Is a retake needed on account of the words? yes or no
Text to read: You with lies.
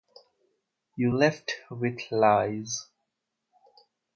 yes